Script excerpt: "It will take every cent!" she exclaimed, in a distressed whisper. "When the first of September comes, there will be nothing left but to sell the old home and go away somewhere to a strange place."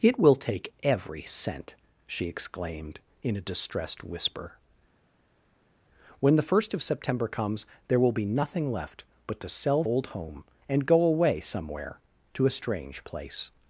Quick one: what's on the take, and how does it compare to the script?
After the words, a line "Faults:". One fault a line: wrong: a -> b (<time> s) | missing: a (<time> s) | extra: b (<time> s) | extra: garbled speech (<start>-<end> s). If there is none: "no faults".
"It will take every cent!" she exclaimed, in a distressed whisper. "When the first of September comes, there will be nothing left but to sell old home and go away somewhere to a strange place."
Faults:
missing: the (9.8 s)